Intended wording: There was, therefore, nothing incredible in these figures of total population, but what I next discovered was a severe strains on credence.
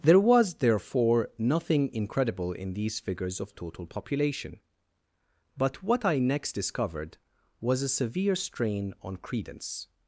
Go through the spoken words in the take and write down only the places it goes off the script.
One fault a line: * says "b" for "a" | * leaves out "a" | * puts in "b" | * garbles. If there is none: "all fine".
* says "strain" for "strains"